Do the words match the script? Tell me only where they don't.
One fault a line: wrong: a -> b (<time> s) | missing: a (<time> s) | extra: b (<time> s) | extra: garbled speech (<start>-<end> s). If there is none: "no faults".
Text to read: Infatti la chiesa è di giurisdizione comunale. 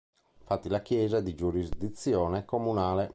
no faults